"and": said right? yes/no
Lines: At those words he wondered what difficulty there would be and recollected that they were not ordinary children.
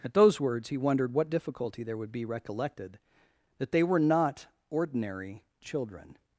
no